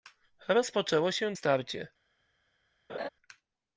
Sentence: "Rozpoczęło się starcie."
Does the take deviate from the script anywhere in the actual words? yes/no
no